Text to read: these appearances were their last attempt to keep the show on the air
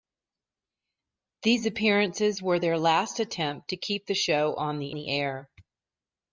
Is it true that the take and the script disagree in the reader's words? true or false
true